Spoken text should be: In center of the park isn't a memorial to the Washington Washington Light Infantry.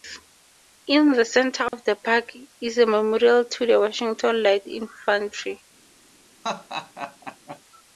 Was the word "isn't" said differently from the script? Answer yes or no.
yes